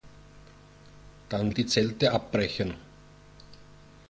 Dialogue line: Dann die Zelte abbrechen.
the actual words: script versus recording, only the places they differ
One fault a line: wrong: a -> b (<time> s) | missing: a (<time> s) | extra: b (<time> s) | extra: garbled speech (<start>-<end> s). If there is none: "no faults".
no faults